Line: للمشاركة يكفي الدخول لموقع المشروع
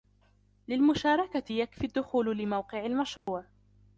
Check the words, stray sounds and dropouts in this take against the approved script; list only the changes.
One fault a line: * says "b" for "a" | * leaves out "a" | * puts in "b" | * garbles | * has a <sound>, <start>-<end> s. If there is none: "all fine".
* has a dropout, 3.2-3.3 s